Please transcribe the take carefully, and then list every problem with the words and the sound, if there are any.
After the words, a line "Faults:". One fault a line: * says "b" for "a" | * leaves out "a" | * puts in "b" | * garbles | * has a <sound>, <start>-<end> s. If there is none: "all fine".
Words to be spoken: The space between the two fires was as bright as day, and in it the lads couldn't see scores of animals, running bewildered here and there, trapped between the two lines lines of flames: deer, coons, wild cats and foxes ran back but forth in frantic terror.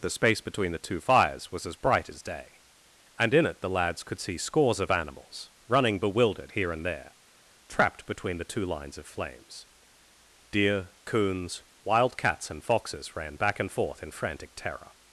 The space between the two fires was as bright as day, and in it the lads could see scores of animals, running bewildered here and there, trapped between the two lines of flames: deer, coons, wild cats and foxes ran back and forth in frantic terror.
Faults:
* says "could" for "couldn't"
* leaves out "lines"
* says "and" for "but"